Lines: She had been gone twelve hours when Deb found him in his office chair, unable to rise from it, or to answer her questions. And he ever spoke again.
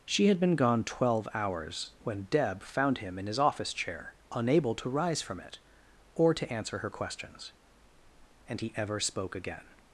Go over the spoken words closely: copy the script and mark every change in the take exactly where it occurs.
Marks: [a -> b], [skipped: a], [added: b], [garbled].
She had been gone twelve hours when Deb found him in his office chair, unable to rise from it, or to answer her questions. And he ever spoke again.